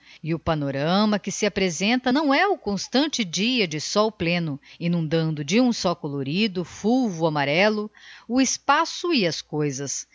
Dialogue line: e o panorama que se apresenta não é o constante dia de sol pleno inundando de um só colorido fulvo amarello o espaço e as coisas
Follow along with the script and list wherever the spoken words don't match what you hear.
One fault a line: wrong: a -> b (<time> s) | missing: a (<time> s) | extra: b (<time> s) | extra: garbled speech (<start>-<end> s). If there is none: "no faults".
no faults